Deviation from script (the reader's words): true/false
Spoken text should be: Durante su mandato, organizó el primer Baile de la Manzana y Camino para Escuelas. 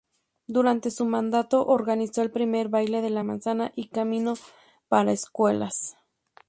false